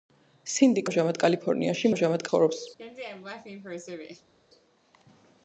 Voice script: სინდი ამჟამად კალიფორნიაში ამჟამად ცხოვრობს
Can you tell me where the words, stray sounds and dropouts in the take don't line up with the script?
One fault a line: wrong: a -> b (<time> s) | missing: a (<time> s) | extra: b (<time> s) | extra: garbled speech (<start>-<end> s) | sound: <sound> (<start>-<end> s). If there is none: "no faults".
sound: laugh (2.8-4.3 s)